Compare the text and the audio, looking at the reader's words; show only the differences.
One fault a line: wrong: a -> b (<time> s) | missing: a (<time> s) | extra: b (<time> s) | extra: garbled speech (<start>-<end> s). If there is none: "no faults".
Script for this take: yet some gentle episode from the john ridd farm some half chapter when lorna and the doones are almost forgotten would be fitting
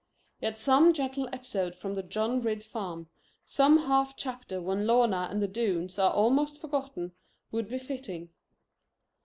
no faults